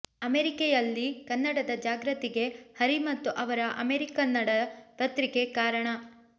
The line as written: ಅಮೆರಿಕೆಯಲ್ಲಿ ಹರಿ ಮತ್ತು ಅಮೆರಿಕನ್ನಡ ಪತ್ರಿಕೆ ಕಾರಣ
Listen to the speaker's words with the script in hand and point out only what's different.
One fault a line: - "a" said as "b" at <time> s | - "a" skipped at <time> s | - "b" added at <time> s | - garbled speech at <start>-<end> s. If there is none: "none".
- "ಕನ್ನಡದ ಜಾಗೃತಿಗೆ" added at 1.2 s
- "ಅವರ" added at 3.4 s